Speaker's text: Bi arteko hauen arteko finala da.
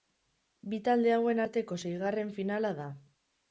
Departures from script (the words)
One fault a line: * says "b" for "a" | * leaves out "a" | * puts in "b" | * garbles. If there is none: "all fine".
* says "talde" for "arteko"
* puts in "seigarren"